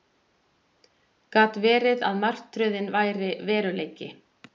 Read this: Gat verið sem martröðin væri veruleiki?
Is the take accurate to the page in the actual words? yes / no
no